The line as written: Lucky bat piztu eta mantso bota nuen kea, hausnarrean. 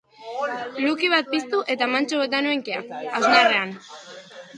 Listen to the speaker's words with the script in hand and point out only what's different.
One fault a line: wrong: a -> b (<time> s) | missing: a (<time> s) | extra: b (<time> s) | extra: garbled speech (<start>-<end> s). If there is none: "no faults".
no faults